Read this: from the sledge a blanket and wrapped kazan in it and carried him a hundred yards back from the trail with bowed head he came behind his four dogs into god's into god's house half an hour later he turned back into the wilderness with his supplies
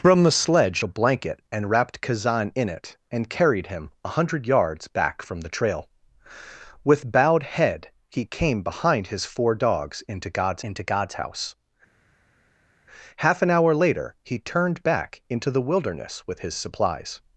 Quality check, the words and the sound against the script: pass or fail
pass